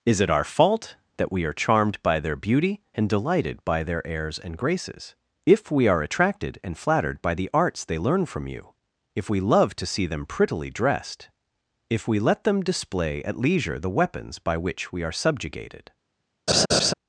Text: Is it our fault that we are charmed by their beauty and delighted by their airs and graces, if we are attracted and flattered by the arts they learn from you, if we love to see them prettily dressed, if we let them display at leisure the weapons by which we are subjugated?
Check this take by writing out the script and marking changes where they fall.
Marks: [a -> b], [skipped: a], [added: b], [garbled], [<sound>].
Is it our fault that we are charmed by their beauty and delighted by their airs and graces, if we are attracted and flattered by the arts they learn from you, if we love to see them prettily dressed, if we let them display at leisure the weapons by which we are subjugated? [laugh]